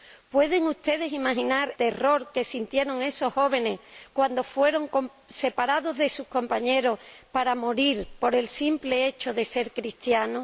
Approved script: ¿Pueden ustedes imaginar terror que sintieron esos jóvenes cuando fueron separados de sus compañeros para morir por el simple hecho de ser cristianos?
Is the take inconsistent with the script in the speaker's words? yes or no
no